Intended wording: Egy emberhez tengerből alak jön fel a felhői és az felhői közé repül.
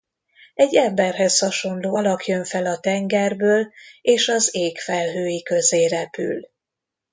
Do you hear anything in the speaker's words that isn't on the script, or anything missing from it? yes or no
yes